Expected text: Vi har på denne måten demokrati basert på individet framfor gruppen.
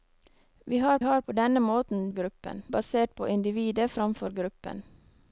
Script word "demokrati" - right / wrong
wrong